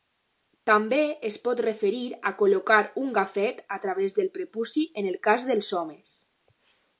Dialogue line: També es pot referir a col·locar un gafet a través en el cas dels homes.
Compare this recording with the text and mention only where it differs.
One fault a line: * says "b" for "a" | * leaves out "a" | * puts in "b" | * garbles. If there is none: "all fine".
* puts in "del prepuci"